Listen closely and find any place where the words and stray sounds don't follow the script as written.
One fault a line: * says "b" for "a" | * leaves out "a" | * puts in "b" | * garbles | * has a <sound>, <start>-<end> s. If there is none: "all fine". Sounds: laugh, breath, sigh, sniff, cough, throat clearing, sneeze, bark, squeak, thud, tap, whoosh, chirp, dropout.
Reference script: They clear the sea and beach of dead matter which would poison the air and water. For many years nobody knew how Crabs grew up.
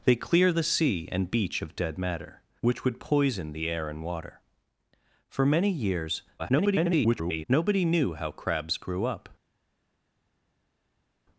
* garbles